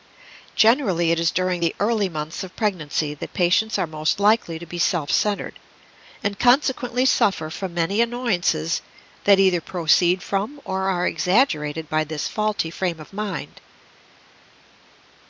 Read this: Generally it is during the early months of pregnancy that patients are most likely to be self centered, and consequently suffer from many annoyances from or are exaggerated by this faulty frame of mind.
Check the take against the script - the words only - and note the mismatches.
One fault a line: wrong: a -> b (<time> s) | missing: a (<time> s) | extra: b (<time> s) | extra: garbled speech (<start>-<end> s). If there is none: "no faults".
extra: that either proceed (9.2 s)